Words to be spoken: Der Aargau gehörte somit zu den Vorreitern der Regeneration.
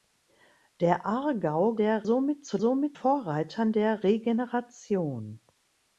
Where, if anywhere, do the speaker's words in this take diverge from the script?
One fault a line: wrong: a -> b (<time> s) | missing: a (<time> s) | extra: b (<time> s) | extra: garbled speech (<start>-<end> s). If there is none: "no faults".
wrong: gehörte -> der (1.7 s)
wrong: den -> somit (2.6 s)